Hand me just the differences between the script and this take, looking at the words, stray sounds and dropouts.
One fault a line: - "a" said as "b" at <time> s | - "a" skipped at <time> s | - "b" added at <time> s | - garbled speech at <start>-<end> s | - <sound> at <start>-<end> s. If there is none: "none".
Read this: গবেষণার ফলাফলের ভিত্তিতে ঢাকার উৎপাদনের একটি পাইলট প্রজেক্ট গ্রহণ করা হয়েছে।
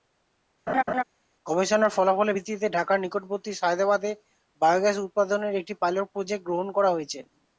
- laugh at 0.7-1.0 s
- "নিকটবর্তী সায়েদাবাদে বায়োগ্যাস" added at 3.0 s